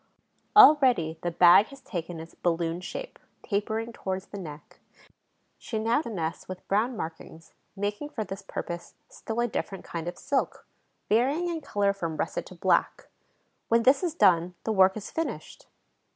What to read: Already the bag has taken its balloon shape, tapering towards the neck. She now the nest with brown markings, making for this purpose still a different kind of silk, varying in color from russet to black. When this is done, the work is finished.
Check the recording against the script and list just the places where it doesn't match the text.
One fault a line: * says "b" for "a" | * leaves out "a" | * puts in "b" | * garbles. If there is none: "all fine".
all fine